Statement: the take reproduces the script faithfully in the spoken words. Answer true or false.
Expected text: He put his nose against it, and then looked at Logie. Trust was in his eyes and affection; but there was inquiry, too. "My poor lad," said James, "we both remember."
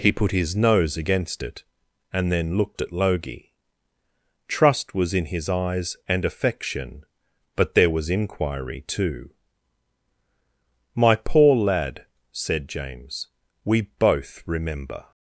true